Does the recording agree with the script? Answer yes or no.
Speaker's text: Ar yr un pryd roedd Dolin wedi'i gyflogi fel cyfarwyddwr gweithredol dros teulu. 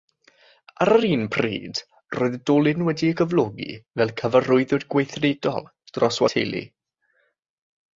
yes